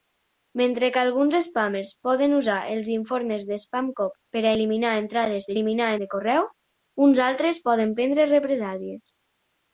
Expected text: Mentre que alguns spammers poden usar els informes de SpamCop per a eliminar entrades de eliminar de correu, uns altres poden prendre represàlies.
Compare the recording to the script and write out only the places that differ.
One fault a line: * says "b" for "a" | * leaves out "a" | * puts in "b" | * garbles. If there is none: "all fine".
all fine